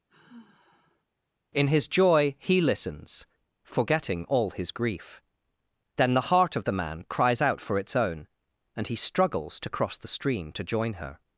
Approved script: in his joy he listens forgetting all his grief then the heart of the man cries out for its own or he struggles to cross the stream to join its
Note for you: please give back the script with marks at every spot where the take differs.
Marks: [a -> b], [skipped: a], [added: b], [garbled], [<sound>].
[sigh] in his joy he listens forgetting all his grief then the heart of the man cries out for its own [or -> and] he struggles to cross the stream to join [its -> her]